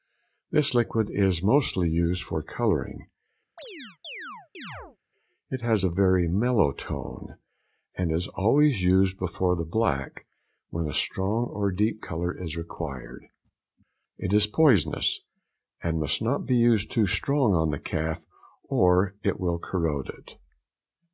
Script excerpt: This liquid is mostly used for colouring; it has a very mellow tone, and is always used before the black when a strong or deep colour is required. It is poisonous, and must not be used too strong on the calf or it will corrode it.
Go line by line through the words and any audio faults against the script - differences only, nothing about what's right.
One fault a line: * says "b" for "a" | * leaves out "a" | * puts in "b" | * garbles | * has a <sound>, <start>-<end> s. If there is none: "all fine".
* has a chirp, 3.6-5.0 s